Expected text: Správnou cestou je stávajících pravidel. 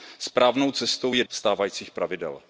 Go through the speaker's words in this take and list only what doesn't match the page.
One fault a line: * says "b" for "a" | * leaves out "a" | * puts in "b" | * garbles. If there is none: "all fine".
all fine